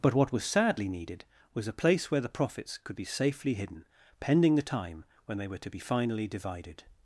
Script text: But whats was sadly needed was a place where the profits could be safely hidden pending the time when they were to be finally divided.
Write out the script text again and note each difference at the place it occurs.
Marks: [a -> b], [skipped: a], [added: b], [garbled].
But [whats -> what] was sadly needed was a place where the profits could be safely hidden pending the time when they were to be finally divided.